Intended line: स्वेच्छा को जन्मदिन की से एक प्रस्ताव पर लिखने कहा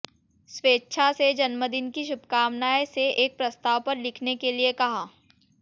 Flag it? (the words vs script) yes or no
yes